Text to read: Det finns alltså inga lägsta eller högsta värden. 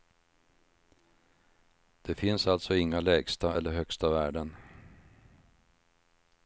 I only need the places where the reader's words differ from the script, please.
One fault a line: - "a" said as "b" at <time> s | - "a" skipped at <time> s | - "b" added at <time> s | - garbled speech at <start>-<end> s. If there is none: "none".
none